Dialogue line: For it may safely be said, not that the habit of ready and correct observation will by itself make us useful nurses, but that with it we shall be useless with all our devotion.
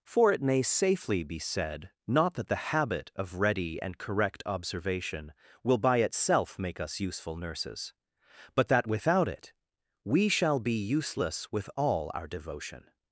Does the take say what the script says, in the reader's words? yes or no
no